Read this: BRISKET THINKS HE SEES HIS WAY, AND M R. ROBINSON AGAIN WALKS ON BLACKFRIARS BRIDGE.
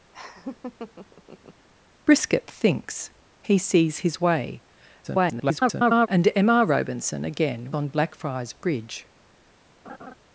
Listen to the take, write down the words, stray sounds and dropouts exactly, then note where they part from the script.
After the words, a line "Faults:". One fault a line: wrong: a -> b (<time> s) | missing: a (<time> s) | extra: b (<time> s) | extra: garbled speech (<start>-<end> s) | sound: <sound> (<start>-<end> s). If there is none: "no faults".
BRISKET THINKS HE SEES HIS WAY, [garbled] AND M R. ROBINSON AGAIN ON BLACKFRIARS BRIDGE.
Faults:
sound: laugh (0.1-1.7 s)
extra: garbled speech (5.0-6.1 s)
missing: WALKS (7.7 s)
sound: laugh (9.8-10.1 s)